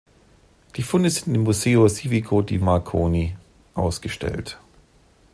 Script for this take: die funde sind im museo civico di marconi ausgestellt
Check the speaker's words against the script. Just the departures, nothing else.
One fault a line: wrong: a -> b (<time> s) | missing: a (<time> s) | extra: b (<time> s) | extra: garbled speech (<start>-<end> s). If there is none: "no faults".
no faults